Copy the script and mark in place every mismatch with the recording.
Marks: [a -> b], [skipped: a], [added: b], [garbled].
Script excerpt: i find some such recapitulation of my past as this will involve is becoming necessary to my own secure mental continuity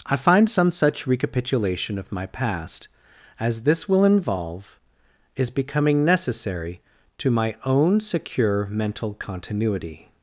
i find some such recapitulation of my past as this will involve is becoming necessary to my own secure mental continuity